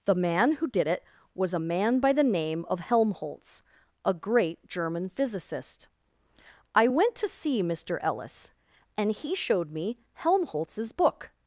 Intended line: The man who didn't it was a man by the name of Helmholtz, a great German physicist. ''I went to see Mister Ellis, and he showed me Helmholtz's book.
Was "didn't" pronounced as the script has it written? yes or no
no